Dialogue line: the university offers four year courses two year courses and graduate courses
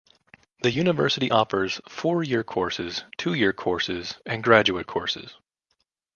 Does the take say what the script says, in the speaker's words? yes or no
yes